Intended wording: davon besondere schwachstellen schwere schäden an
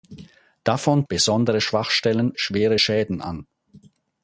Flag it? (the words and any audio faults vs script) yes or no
no